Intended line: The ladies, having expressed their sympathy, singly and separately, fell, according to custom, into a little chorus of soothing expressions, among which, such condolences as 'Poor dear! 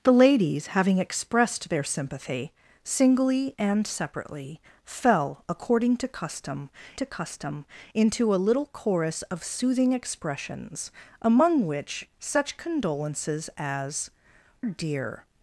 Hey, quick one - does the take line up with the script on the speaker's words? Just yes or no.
no